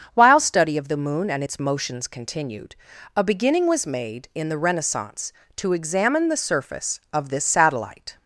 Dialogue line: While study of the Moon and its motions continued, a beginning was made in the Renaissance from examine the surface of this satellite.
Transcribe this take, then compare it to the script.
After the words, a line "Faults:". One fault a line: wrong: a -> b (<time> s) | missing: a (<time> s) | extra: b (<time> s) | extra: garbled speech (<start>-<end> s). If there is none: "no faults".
While study of the Moon and its motions continued, a beginning was made in the Renaissance to examine the surface of this satellite.
Faults:
wrong: from -> to (5.6 s)